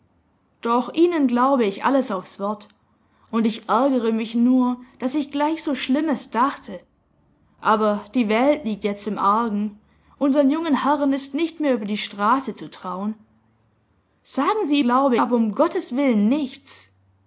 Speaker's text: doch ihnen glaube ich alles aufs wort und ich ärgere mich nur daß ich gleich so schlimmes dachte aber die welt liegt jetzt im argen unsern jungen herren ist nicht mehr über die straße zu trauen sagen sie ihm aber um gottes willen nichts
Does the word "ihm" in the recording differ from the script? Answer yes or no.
yes